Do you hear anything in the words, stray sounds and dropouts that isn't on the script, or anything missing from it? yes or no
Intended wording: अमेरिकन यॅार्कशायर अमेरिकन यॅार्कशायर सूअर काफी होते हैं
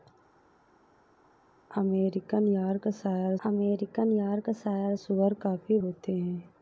no